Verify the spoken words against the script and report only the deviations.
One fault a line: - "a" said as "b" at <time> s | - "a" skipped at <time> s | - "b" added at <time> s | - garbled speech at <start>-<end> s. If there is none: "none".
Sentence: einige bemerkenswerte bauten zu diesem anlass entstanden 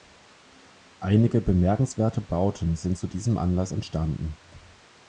- "sind" added at 2.8 s